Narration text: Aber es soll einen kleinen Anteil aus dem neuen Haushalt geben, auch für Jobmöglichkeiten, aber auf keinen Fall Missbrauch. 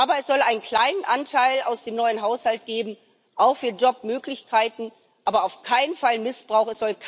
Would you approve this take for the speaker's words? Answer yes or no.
yes